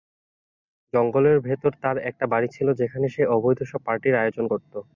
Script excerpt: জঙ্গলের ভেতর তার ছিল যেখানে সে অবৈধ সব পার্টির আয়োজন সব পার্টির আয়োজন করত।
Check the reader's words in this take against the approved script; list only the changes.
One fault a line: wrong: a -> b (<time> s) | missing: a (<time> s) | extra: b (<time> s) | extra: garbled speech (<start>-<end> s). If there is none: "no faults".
extra: একটা বাড়ি (2.1 s)
missing: সব পার্টির আয়োজন (4.5 s)